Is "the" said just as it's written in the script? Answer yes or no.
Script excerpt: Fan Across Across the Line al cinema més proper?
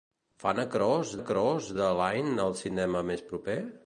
yes